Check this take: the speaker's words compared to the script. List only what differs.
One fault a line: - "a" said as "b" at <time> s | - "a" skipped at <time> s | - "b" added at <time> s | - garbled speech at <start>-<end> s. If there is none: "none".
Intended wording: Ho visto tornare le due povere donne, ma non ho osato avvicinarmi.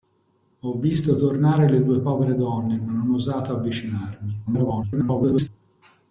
- garbled speech at 4.5-5.5 s